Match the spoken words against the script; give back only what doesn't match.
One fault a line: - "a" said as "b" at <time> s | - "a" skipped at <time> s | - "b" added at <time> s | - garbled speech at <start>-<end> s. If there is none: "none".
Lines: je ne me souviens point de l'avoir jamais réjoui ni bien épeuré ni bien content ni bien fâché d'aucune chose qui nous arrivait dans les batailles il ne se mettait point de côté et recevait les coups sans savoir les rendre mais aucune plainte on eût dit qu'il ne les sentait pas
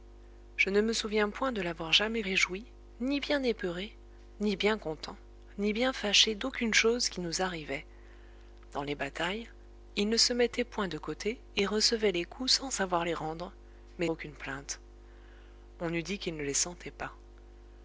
none